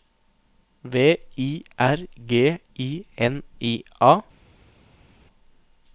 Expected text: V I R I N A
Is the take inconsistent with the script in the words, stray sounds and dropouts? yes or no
yes